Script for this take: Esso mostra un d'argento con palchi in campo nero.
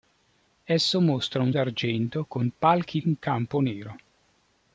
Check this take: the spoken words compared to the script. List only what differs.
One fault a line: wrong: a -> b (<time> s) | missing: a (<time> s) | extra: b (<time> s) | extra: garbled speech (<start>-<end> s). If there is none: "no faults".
no faults